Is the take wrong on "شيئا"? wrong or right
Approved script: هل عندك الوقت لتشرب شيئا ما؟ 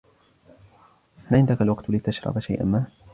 right